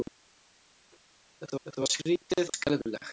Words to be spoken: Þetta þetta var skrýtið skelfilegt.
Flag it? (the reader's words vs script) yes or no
no